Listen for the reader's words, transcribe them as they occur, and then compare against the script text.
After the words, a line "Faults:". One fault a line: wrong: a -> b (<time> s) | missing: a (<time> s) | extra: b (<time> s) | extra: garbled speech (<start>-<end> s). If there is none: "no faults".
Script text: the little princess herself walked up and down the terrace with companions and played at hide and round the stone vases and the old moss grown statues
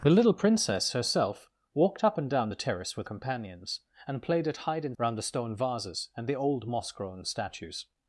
the little princess herself walked up and down the terrace with companions and played at hide and round the stone vases and the old moss grown statues
Faults:
no faults